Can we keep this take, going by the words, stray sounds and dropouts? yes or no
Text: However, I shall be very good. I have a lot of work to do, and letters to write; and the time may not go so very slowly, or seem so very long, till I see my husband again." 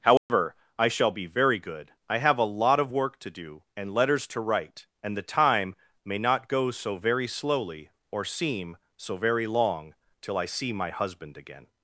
no